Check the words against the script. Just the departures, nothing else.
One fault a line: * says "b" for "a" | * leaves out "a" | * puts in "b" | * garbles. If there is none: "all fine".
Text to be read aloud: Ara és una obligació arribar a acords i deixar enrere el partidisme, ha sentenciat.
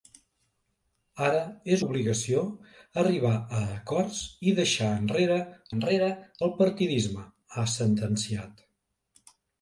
* leaves out "una"
* puts in "enrere"